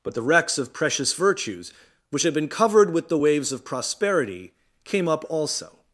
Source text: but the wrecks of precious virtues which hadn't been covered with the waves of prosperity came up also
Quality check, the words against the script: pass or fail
fail